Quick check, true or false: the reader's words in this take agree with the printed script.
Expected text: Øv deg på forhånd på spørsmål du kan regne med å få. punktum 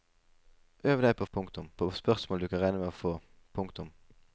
false